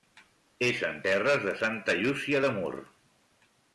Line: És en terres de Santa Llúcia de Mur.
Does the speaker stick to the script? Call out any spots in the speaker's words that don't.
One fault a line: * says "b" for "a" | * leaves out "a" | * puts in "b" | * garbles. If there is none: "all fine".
all fine